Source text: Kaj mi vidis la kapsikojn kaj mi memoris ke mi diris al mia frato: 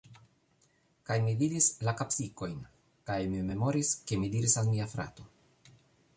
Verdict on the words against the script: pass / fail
pass